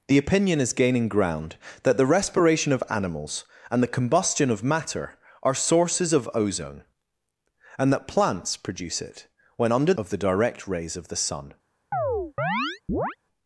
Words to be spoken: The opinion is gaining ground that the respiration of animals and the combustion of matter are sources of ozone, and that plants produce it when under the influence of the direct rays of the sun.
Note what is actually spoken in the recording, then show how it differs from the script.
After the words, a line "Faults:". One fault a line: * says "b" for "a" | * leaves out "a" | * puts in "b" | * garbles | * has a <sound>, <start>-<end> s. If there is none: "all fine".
The opinion is gaining ground that the respiration of animals and the combustion of matter are sources of ozone, and that plants produce it when under of the direct rays of the sun.
Faults:
* leaves out "the influence"
* has a chirp, 11.9-13.2 s